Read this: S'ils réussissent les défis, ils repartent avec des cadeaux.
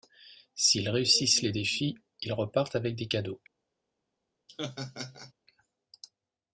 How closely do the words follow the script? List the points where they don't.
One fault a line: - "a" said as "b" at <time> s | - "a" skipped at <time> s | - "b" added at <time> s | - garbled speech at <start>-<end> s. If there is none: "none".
none